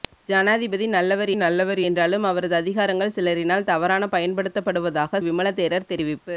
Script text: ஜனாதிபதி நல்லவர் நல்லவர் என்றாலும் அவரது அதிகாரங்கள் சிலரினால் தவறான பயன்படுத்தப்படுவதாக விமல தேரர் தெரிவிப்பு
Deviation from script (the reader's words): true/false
false